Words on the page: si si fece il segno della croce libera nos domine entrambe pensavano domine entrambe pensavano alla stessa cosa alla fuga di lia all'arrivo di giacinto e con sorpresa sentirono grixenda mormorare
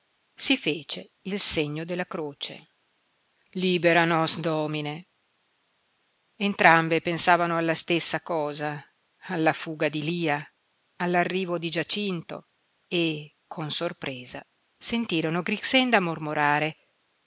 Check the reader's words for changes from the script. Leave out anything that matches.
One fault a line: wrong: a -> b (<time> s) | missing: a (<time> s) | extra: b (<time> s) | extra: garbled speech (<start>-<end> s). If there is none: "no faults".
missing: si (0.6 s)
missing: domine entrambe pensavano (7.5 s)